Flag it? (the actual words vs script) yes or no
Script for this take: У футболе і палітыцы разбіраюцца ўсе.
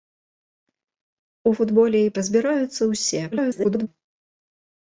yes